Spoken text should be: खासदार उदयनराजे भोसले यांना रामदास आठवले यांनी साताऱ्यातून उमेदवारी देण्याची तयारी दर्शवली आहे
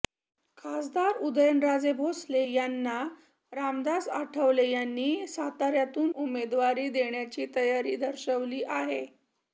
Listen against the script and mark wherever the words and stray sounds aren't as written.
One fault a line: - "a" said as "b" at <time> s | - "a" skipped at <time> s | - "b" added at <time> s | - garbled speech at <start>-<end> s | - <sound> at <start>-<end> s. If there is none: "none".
none